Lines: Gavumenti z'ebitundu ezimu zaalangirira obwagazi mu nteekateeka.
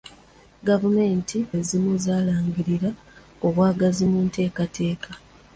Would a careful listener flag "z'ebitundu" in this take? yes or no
yes